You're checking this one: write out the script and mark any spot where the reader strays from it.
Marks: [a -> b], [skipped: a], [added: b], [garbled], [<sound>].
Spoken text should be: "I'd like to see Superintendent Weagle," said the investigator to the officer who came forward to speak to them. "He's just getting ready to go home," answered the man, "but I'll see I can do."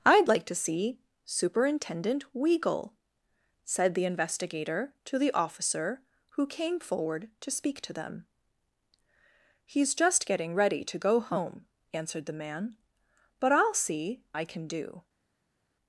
"I'd like to see Superintendent Weagle," said the investigator to the officer who came forward to speak to them. "He's just getting ready to go home," answered the man, "but I'll see I can do."